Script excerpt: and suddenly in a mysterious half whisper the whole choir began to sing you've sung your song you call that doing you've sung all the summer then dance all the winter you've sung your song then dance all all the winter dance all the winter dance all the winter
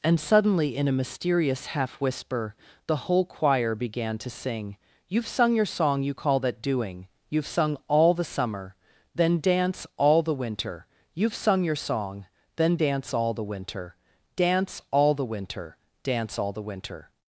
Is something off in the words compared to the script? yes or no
yes